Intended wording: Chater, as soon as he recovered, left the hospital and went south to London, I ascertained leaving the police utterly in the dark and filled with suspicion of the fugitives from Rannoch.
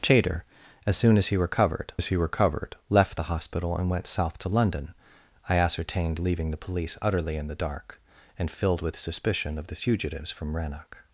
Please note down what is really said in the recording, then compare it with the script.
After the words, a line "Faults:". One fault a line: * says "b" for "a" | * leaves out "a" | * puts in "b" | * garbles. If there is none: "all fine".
Chater, as soon as he recovered as he recovered, left the hospital and went south to London, I ascertained leaving the police utterly in the dark and filled with suspicion of the fugitives from Rannoch.
Faults:
* puts in "as he recovered"